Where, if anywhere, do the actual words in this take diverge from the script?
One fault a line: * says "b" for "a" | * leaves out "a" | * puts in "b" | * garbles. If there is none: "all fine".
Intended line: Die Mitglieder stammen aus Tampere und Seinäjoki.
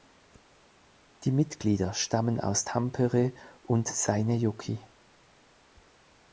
all fine